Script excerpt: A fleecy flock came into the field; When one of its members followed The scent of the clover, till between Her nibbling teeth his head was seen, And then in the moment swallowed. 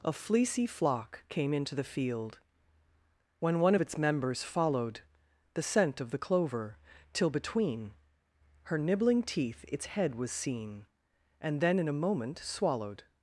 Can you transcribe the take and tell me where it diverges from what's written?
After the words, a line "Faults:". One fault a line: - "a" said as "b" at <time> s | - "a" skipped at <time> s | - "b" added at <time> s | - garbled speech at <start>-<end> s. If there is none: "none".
A fleecy flock came into the field; When one of its members followed The scent of the clover, till between Her nibbling teeth its head was seen, And then in a moment swallowed.
Faults:
- "his" said as "its" at 9.7 s
- "the" said as "a" at 11.9 s